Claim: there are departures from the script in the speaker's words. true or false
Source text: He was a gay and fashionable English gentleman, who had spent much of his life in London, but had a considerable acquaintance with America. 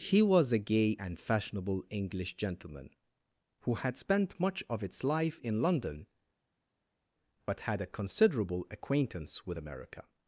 true